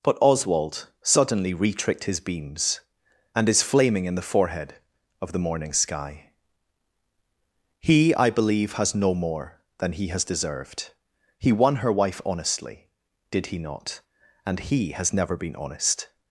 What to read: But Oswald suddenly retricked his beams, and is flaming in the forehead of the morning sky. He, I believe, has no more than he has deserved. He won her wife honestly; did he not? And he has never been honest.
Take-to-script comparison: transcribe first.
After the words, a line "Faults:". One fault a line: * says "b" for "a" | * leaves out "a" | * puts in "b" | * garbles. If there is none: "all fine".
But Oswald suddenly retricked his beams, and is flaming in the forehead of the morning sky. He, I believe, has no more than he has deserved. He won her wife honestly; did he not? And he has never been honest.
Faults:
all fine